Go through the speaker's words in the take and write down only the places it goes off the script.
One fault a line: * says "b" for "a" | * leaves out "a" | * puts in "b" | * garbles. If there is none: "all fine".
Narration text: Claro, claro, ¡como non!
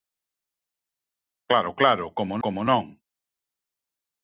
* puts in "como"